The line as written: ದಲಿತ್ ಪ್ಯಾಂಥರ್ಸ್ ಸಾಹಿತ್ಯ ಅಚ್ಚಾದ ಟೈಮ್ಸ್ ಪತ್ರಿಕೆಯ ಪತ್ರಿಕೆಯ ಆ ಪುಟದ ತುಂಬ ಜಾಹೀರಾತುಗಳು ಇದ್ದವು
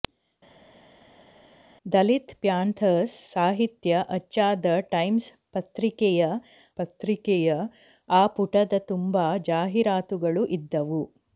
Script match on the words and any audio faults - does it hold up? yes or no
yes